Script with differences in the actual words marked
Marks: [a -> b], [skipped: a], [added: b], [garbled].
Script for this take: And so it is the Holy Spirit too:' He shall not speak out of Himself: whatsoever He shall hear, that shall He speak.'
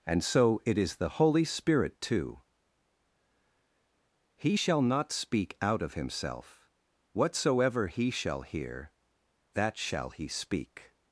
And so it is the Holy Spirit too:' He shall not speak out of Himself: whatsoever He shall hear, that shall He speak.'